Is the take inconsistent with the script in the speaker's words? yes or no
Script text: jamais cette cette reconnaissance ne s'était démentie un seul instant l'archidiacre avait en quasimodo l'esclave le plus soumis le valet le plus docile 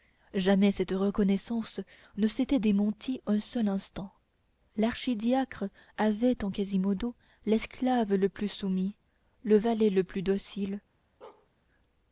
yes